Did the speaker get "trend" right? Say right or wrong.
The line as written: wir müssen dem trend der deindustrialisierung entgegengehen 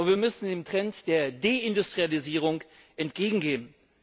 right